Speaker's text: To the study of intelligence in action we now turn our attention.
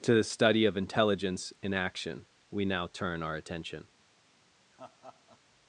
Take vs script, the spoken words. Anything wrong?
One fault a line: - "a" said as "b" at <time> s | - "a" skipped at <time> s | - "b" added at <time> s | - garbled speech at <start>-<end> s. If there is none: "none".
none